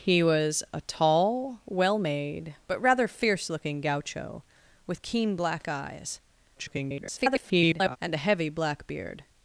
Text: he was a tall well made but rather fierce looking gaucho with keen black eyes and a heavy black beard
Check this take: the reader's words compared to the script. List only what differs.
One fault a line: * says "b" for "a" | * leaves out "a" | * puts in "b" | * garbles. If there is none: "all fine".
* garbles